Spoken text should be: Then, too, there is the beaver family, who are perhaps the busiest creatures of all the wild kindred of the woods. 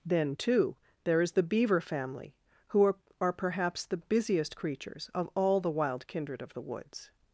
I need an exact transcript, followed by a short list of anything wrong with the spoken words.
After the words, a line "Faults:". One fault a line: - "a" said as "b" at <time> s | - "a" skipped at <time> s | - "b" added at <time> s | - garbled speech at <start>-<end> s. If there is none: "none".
Then, too, there is the beaver family, who are are perhaps the busiest creatures of all the wild kindred of the woods.
Faults:
- "are" added at 3.2 s